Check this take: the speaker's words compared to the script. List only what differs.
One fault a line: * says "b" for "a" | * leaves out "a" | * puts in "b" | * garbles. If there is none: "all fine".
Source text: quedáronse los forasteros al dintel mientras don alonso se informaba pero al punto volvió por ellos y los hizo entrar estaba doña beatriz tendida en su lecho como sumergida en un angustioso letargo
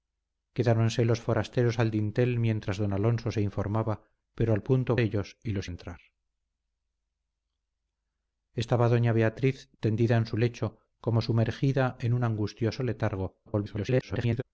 * leaves out "volvió por"
* leaves out "hizo"
* garbles